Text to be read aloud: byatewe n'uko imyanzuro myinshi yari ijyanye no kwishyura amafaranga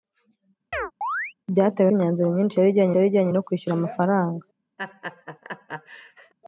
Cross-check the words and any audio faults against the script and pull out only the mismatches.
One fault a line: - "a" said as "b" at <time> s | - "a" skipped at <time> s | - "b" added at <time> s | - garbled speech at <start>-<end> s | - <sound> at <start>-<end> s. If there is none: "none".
- chirp at 0.7-1.3 s
- "n'uko" skipped at 1.9 s
- "yari ijyanye" added at 2.9 s
- laugh at 4.8-6.3 s